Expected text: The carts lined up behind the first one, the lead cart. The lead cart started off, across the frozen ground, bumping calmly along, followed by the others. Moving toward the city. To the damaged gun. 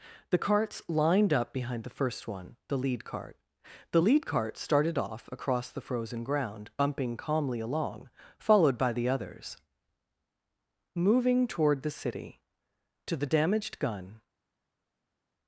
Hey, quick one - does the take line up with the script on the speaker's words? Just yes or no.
yes